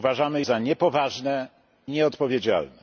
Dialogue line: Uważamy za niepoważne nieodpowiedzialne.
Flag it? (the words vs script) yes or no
no